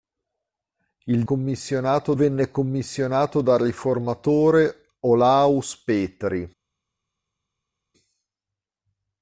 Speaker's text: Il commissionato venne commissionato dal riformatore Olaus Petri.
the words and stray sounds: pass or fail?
pass